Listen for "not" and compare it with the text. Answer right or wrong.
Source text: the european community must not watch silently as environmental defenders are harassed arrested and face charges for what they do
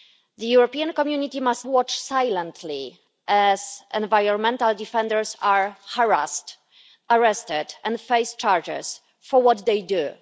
wrong